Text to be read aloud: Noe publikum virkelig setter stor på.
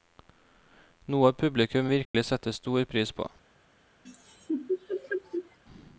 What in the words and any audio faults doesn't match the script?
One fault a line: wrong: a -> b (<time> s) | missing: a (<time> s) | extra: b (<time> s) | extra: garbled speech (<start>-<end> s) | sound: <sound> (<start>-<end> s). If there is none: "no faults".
sound: dropout (2.0-2.1 s)
extra: pris (2.8 s)
sound: laugh (4.0-5.6 s)